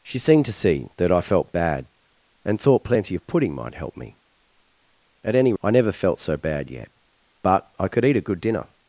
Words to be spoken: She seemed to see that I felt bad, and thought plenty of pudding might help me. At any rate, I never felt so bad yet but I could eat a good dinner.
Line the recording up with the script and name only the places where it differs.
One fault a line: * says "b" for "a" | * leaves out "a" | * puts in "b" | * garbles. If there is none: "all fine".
* leaves out "rate"